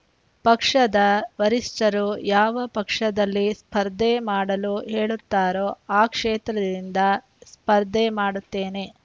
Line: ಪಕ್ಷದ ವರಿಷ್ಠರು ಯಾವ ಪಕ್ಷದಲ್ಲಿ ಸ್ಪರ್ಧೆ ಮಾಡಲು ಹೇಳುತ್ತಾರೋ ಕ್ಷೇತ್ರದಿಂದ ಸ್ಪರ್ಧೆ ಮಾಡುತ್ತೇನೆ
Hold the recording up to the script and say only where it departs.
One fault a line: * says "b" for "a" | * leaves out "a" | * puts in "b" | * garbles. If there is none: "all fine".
* puts in "ಆ"